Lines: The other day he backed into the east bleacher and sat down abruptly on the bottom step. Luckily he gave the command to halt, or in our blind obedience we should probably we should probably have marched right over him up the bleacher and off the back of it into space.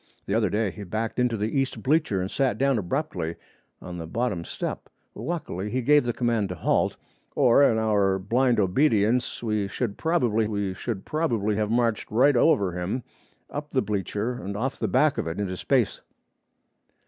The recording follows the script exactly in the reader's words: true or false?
true